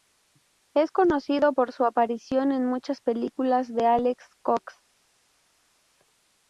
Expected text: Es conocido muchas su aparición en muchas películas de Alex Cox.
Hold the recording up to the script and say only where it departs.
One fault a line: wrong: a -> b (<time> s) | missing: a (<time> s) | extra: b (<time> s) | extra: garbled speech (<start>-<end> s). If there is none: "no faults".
wrong: muchas -> por (1.5 s)